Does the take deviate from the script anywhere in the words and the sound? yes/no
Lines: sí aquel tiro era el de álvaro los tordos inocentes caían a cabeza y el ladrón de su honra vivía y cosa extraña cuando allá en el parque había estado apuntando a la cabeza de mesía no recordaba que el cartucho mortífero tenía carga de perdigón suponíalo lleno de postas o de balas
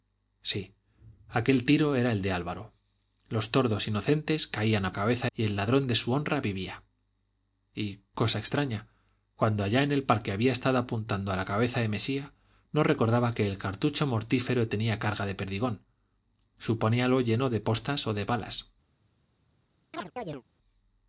yes